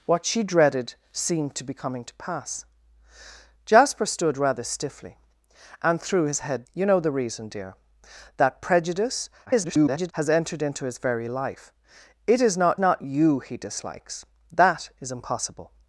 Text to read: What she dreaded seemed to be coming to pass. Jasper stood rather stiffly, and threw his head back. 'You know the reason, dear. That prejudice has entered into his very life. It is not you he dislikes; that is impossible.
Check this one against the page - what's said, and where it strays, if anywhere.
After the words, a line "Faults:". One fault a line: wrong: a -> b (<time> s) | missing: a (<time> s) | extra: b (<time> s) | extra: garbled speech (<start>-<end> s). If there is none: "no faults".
What she dreaded seemed to be coming to pass. Jasper stood rather stiffly, and threw his head. 'You know the reason, dear. That prejudice [garbled] has entered into his very life. It is not not you he dislikes; that is impossible.
Faults:
missing: back (6.7 s)
extra: garbled speech (9.5-10.1 s)
extra: not (12.8 s)